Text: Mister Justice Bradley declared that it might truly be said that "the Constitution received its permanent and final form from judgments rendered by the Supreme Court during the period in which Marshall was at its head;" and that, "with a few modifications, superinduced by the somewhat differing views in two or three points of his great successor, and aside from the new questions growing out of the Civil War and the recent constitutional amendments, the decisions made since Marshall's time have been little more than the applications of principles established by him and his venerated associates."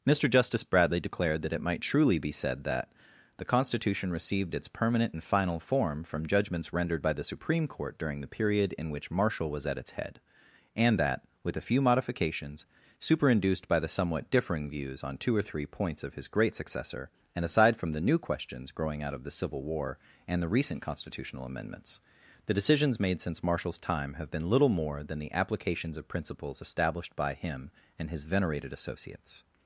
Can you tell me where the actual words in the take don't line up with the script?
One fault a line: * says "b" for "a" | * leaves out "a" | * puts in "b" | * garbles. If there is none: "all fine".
* says "on" for "in"